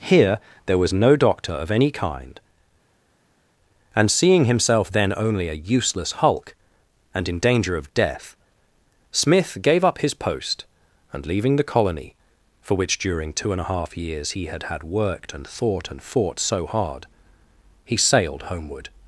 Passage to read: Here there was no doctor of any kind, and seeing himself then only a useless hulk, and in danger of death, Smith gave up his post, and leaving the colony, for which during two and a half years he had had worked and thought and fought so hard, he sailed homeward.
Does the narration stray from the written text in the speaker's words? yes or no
no